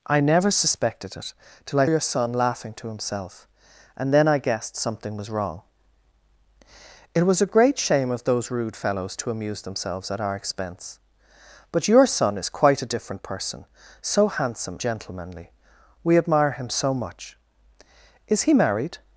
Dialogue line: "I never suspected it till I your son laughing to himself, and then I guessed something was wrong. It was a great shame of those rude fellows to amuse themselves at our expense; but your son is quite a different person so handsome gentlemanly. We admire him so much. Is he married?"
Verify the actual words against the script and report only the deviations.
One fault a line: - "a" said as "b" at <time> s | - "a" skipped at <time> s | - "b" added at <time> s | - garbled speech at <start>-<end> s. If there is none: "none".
none